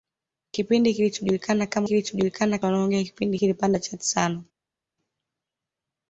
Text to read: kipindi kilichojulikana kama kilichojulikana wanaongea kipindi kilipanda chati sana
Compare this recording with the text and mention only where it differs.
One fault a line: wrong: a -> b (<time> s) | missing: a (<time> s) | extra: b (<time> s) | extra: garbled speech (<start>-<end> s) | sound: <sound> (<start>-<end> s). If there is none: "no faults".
no faults